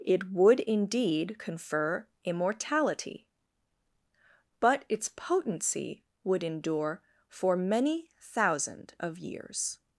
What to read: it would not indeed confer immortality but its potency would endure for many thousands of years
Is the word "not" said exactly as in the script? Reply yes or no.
no